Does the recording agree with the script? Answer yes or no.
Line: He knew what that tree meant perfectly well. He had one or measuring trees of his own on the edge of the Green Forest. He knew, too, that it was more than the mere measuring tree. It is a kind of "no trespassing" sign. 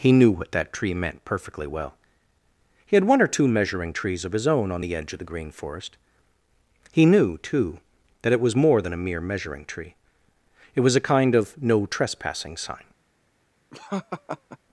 no